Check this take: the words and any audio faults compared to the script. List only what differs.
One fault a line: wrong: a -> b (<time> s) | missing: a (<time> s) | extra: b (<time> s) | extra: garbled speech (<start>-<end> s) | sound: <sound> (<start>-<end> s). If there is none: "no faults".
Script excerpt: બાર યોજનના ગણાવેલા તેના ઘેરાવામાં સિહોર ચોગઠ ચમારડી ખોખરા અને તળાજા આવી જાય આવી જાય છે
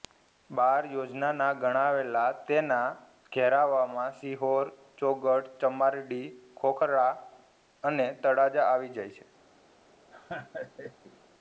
missing: આવી જાય (9.2 s)
sound: laugh (10.1-11.2 s)